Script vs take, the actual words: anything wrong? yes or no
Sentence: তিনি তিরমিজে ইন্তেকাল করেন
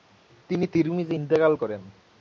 no